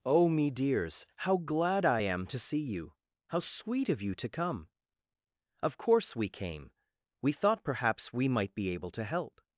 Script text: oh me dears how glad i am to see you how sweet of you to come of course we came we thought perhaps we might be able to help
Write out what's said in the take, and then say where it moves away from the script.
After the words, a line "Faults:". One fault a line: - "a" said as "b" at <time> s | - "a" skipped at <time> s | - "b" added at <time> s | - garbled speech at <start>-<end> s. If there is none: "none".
oh me dears how glad i am to see you how sweet of you to come of course we came we thought perhaps we might be able to help
Faults:
none